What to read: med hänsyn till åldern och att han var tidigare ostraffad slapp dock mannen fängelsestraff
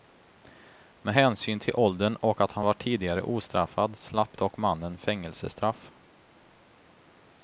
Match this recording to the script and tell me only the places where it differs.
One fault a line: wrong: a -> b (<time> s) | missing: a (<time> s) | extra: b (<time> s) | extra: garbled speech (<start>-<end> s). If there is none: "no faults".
no faults